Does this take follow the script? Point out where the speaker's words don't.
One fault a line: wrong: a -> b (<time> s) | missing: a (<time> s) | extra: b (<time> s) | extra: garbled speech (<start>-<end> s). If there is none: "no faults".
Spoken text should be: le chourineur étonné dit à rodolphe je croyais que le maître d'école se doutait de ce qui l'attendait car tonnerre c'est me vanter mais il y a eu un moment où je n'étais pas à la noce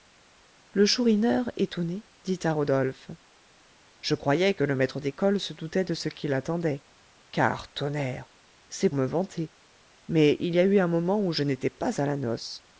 no faults